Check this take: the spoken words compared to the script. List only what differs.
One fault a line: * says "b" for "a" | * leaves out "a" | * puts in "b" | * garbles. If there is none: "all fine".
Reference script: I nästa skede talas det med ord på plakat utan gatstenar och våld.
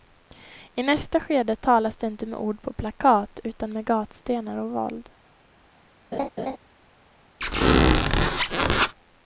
* puts in "inte"
* puts in "med"